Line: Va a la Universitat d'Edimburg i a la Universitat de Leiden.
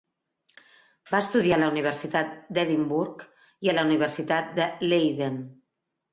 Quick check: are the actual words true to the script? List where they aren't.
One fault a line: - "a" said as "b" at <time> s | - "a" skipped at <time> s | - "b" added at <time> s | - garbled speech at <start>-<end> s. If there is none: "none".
- "estudiar" added at 1.2 s